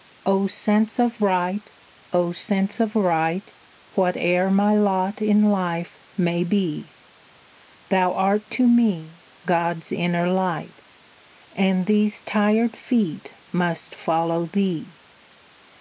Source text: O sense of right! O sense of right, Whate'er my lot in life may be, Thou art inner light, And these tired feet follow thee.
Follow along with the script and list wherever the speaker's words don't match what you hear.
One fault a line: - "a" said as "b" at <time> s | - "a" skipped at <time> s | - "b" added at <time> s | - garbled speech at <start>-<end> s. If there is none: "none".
- "to me God's" added at 8.5 s
- "must" added at 13.5 s